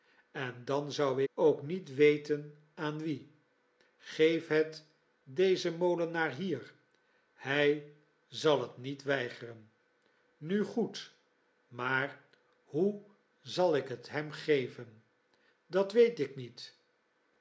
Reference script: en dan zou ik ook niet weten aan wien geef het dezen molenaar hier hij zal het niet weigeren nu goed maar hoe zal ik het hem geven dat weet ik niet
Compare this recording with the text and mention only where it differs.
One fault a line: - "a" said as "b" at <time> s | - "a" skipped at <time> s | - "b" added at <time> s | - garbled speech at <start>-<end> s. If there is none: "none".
- "ik" skipped at 1.2 s